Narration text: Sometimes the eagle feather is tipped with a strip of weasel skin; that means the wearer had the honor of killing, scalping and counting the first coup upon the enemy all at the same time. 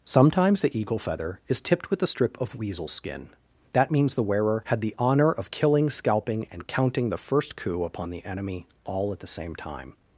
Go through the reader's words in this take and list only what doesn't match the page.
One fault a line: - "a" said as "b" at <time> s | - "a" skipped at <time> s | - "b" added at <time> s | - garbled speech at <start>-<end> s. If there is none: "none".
none